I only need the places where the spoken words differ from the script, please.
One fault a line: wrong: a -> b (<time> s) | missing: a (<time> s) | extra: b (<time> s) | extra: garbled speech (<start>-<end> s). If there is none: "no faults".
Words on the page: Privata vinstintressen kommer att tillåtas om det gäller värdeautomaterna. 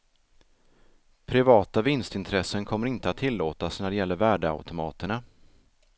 extra: inte (2.9 s)
wrong: om -> när (3.8 s)